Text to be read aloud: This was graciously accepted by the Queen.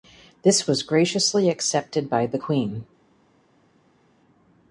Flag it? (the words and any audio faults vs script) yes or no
no